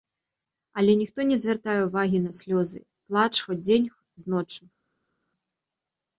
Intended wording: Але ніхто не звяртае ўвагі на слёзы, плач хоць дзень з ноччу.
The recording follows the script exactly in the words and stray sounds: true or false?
true